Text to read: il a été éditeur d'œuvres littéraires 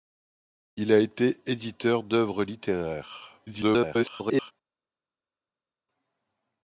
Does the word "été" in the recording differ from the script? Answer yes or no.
no